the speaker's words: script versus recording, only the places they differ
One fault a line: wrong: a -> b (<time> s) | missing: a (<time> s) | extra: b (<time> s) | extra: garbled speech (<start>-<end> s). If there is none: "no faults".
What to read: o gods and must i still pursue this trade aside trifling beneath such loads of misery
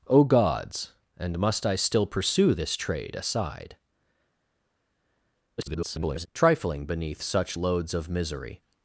extra: garbled speech (5.6-6.3 s)